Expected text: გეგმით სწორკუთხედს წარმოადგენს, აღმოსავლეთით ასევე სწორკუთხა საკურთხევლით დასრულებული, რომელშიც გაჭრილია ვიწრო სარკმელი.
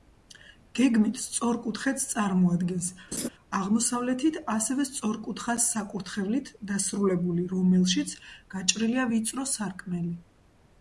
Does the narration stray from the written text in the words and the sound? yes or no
yes